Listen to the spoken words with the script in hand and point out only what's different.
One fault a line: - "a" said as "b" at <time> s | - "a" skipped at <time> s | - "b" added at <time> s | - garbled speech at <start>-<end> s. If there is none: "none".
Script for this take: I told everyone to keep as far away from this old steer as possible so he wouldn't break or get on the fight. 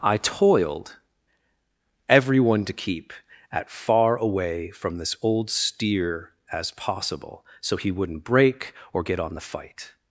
- "told" said as "toiled" at 0.2 s
- "as" said as "at" at 3.5 s